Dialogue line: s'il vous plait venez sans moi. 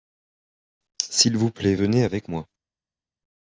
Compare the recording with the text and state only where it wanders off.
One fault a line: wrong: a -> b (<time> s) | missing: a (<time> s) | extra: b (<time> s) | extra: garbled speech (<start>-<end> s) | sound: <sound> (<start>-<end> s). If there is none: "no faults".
wrong: sans -> avec (2.0 s)